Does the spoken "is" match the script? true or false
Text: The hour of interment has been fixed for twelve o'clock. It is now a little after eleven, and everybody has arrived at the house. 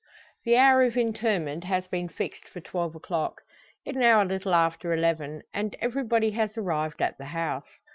false